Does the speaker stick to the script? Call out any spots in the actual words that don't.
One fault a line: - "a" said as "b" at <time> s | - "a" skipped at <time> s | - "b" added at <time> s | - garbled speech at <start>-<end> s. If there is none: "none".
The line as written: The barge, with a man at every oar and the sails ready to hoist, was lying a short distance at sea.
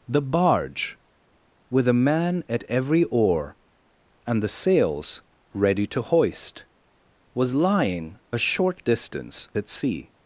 none